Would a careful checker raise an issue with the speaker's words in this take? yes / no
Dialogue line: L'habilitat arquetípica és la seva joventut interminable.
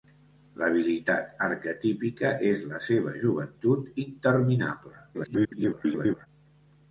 yes